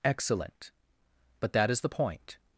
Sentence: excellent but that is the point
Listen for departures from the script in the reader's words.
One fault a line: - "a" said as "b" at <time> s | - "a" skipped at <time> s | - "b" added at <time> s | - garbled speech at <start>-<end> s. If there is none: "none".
none